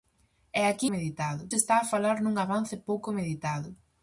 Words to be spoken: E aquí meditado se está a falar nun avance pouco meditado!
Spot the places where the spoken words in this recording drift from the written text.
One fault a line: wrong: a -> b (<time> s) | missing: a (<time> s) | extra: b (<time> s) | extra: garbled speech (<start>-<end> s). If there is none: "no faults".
no faults